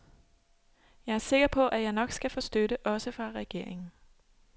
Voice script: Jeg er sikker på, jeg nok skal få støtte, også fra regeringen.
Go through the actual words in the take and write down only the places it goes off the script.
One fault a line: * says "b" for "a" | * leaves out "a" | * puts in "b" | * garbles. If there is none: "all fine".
* puts in "at"